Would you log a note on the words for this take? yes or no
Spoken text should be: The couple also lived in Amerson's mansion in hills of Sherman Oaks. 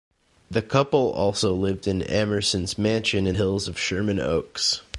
no